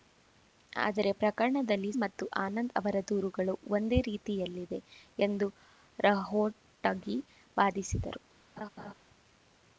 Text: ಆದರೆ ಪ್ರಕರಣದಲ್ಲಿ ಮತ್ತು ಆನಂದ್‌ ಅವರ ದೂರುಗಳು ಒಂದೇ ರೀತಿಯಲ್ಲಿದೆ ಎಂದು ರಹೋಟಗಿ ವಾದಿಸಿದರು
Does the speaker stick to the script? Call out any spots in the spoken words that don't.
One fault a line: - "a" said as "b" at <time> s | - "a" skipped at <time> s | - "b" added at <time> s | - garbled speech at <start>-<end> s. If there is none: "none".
none